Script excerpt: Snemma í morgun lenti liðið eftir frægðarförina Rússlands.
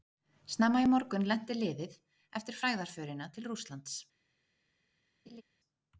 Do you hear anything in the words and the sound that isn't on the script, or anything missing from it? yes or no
yes